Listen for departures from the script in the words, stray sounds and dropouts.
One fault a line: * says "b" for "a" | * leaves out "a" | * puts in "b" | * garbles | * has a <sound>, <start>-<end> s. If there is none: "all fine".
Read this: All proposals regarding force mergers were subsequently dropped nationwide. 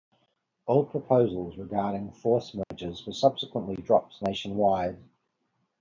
* has a dropout, 2.6-2.7 s